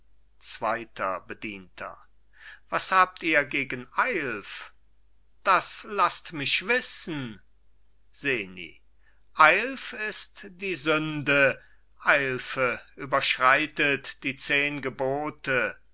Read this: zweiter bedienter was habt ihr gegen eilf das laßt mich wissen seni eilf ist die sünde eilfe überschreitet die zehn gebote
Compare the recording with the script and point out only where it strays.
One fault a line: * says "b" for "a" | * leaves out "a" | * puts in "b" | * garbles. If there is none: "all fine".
all fine